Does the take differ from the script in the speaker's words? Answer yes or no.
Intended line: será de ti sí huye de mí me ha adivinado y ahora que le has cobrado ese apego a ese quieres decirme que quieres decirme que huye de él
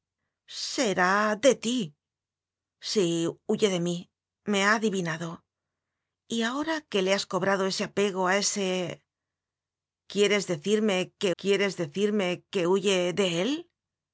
no